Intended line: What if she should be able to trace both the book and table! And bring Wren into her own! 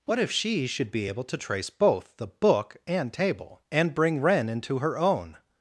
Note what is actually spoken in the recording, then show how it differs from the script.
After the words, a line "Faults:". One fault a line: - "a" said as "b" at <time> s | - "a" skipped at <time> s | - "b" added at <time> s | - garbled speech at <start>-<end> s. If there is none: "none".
What if she should be able to trace both the book and table! And bring Wren into her own!
Faults:
none